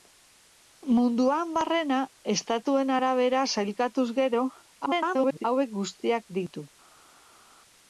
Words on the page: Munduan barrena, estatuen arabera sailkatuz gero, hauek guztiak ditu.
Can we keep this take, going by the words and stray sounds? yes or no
no